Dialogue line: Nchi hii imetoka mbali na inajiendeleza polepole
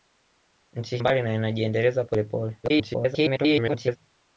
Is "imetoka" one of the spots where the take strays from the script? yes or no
yes